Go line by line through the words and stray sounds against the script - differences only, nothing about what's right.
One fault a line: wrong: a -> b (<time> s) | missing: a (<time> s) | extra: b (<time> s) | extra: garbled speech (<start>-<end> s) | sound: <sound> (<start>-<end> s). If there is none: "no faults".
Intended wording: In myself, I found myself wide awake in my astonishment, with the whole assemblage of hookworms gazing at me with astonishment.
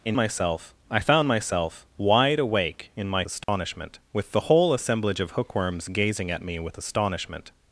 sound: dropout (3.4-3.5 s)